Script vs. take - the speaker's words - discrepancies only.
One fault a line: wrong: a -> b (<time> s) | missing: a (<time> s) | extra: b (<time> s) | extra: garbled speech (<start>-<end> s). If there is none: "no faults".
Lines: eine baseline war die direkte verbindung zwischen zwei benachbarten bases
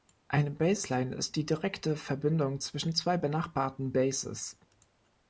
wrong: war -> ist (1.1 s)